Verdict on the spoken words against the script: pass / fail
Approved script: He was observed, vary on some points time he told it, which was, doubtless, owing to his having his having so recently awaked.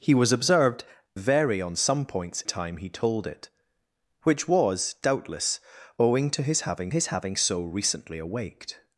pass